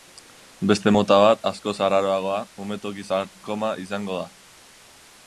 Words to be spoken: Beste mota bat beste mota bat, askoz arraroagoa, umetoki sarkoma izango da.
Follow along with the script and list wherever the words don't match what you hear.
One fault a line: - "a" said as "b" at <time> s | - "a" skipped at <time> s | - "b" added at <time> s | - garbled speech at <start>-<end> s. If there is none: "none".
- "beste mota bat" skipped at 1.4 s